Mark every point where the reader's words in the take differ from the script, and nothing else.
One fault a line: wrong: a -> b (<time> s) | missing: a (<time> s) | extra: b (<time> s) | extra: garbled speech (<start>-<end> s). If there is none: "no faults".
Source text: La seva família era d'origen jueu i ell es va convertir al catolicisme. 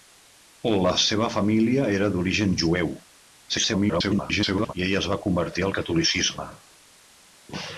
extra: garbled speech (3.5-4.7 s)